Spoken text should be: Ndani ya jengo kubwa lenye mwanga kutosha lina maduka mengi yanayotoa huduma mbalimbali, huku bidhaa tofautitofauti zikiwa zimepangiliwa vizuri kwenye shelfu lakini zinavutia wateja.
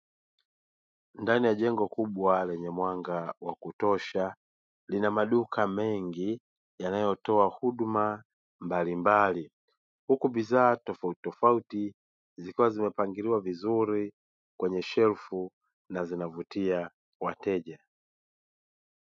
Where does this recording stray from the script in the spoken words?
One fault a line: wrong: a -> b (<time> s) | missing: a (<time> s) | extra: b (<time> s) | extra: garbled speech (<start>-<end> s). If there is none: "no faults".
extra: wa (3.4 s)
wrong: lakini -> na (15.9 s)